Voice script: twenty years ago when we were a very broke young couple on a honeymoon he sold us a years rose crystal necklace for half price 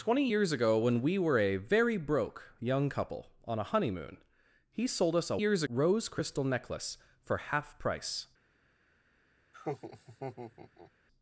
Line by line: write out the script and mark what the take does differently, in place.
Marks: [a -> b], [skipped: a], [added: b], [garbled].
twenty years ago when we were a very broke young couple on a honeymoon he sold us a years rose crystal necklace for half price